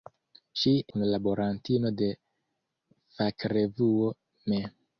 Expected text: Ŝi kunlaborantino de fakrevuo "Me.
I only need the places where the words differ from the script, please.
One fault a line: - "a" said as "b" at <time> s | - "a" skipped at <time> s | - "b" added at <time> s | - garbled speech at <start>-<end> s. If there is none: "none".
none